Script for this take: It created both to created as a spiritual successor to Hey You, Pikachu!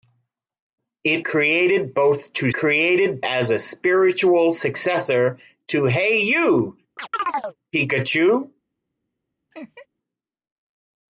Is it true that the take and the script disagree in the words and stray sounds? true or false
true